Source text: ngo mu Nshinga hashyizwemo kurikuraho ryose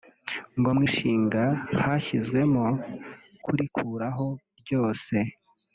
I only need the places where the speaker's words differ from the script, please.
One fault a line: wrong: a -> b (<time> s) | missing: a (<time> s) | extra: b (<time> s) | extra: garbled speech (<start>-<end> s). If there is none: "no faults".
no faults